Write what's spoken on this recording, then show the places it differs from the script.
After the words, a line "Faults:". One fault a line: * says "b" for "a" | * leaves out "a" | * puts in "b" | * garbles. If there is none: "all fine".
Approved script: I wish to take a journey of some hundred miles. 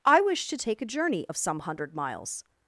I wish to take a journey of some hundred miles.
Faults:
all fine